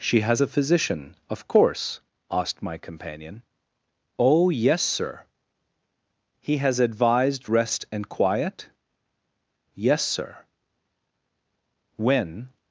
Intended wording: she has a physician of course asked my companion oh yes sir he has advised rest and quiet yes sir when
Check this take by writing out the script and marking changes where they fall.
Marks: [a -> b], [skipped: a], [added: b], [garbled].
she has a physician of course asked my companion oh yes sir he has advised rest and quiet yes sir when